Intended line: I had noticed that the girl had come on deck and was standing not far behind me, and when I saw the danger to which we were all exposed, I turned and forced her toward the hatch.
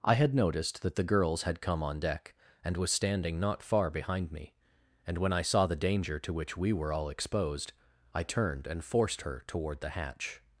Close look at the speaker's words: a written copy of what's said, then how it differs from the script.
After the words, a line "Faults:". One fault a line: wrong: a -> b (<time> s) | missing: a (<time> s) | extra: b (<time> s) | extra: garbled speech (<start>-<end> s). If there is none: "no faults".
I had noticed that the girls had come on deck and was standing not far behind me, and when I saw the danger to which we were all exposed, I turned and forced her toward the hatch.
Faults:
wrong: girl -> girls (1.0 s)